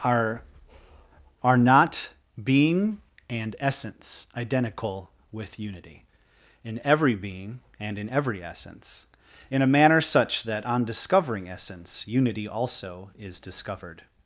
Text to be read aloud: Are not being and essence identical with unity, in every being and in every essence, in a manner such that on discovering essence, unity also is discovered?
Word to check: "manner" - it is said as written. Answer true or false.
true